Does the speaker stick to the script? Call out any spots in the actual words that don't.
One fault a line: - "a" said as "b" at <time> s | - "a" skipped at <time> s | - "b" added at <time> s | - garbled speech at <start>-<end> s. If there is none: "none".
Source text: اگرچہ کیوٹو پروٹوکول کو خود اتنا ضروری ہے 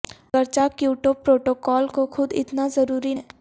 none